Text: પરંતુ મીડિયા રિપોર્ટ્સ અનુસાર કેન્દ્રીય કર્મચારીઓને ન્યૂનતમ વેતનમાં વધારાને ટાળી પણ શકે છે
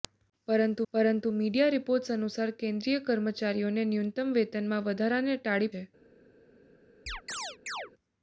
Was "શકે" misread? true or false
true